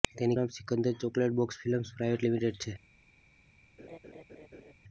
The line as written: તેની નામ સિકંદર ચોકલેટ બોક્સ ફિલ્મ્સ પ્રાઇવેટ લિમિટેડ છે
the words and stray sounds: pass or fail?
fail